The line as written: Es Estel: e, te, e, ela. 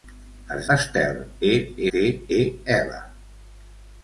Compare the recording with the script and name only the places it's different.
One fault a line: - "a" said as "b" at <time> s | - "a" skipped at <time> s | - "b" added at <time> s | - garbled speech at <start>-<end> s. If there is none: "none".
none